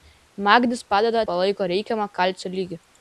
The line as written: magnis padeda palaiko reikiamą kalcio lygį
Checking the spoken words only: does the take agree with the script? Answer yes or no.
yes